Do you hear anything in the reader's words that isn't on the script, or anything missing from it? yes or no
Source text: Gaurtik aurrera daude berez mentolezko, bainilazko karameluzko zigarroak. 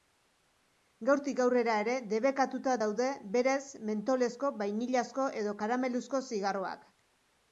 yes